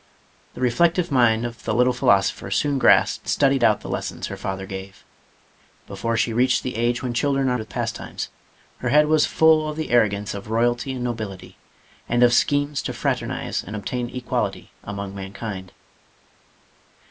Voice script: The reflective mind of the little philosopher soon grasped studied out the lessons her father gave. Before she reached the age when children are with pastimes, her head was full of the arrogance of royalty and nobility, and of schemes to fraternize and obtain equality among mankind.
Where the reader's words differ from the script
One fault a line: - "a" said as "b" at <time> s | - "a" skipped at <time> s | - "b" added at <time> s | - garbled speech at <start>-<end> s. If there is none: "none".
none